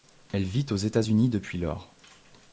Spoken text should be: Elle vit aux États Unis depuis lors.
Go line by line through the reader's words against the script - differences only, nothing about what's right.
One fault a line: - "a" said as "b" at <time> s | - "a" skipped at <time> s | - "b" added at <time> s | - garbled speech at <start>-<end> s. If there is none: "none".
none